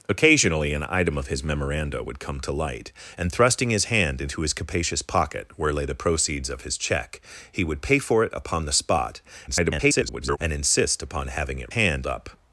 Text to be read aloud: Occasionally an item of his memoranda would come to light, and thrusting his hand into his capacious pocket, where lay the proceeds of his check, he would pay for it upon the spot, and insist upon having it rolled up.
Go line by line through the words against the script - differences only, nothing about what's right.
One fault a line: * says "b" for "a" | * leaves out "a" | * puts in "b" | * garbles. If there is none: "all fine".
* garbles
* says "hand" for "rolled"